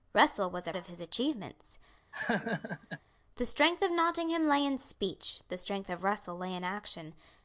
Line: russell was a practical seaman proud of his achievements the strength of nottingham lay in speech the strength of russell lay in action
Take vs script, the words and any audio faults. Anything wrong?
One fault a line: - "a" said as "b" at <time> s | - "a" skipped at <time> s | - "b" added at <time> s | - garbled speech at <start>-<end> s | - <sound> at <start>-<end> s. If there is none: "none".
- "practical seaman proud" skipped at 0.7 s
- laugh at 2.1-3.0 s